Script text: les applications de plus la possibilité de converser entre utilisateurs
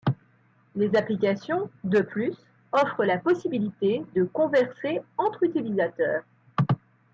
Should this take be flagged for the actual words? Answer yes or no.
yes